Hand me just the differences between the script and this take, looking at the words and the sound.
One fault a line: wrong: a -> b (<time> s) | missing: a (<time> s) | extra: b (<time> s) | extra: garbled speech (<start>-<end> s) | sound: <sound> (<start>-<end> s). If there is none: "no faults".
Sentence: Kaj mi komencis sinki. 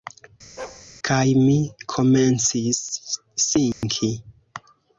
sound: bark (0.6-0.9 s)
sound: dropout (3.7-3.8 s)